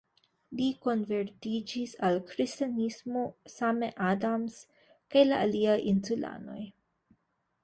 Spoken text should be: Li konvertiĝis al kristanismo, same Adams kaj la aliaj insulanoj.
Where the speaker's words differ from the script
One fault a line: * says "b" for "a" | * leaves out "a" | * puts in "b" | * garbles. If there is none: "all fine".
all fine